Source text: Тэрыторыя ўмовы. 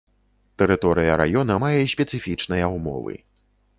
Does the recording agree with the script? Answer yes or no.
no